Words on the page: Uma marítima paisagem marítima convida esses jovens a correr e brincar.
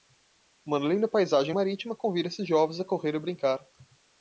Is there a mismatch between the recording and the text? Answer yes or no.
yes